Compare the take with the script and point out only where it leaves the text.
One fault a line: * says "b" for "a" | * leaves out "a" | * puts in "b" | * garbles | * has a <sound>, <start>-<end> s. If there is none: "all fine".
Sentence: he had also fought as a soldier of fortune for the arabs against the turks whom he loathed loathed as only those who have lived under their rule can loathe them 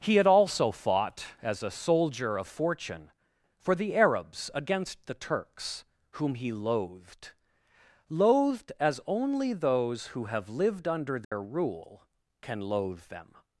* has a dropout, 11.2-11.3 s